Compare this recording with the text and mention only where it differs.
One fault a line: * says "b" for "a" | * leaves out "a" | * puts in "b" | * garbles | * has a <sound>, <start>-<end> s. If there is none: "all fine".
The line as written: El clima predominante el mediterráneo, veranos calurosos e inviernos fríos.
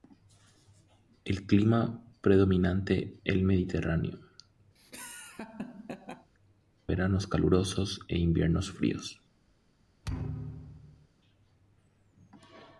* has a laugh, 4.8-6.3 s
* has a thud, 10.0-11.1 s